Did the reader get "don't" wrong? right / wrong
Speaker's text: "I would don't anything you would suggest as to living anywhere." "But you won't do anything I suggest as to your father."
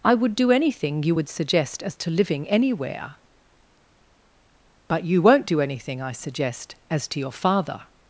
wrong